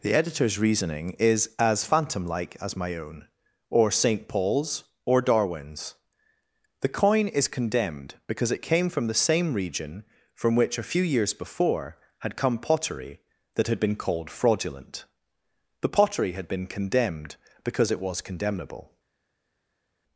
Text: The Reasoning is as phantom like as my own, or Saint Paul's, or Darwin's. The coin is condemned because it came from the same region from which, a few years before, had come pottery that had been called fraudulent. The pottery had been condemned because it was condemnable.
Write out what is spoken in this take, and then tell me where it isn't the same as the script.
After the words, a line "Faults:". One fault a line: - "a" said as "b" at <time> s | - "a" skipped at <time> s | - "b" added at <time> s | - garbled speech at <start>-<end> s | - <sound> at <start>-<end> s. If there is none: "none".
The Editor's reasoning is as phantom like as my own, or Saint Paul's, or Darwin's. The coin is condemned because it came from the same region from which, a few years before, had come pottery that had been called fraudulent. The pottery had been condemned because it was condemnable.
Faults:
- "Editor's" added at 0.1 s